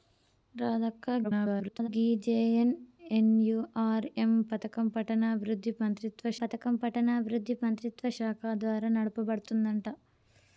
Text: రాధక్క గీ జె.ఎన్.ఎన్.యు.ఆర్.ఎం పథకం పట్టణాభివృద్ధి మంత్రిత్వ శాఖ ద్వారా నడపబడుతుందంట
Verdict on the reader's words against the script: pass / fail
fail